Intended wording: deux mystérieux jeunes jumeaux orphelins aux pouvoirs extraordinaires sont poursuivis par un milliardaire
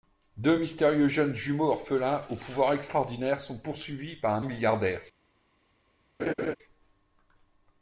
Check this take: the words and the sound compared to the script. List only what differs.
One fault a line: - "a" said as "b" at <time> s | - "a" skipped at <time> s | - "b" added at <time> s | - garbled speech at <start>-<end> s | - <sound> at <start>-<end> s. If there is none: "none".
- laugh at 6.2-6.6 s